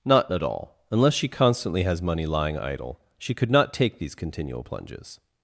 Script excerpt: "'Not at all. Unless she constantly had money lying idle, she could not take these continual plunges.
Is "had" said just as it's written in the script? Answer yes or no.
no